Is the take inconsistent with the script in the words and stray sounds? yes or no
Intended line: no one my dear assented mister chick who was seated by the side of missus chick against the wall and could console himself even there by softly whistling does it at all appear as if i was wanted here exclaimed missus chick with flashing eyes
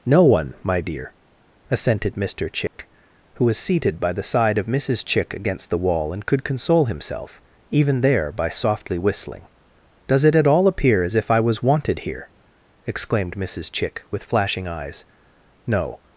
yes